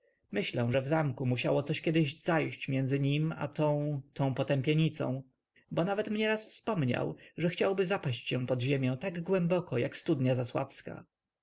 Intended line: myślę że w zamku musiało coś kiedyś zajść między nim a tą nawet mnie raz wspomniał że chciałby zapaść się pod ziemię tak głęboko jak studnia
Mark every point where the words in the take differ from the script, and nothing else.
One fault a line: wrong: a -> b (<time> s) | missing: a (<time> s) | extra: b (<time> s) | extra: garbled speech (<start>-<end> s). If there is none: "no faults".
extra: tą potępienicą bo (4.1 s)